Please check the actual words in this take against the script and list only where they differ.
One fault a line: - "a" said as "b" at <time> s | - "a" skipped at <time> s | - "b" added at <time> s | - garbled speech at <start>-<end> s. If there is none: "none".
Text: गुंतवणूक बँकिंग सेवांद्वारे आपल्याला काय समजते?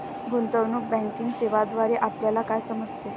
none